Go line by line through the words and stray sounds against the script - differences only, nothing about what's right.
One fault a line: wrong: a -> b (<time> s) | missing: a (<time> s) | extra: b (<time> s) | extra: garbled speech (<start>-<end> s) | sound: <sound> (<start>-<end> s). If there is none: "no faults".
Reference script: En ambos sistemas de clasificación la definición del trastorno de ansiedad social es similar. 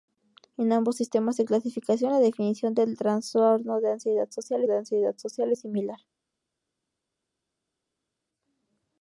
extra: de ansiedad social (4.7 s)